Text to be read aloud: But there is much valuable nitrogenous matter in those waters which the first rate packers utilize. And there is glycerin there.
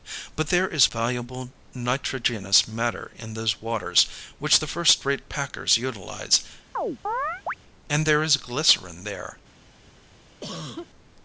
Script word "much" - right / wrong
wrong